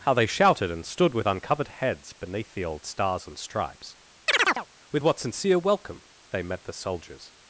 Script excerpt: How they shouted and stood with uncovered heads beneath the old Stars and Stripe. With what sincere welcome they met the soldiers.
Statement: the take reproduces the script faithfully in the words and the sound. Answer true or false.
false